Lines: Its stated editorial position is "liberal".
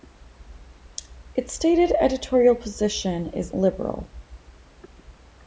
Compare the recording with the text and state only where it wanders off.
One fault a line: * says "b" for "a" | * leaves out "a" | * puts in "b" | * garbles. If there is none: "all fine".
all fine